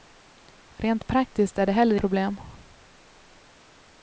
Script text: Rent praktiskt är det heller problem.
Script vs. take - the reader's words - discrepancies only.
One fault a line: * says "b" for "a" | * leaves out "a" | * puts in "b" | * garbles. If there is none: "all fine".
all fine